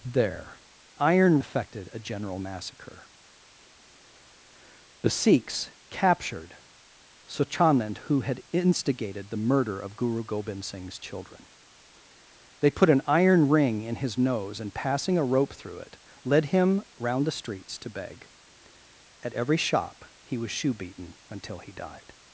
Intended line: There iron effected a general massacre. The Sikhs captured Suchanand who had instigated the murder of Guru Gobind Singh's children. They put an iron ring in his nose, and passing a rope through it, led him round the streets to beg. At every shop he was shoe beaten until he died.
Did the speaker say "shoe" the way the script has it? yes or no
yes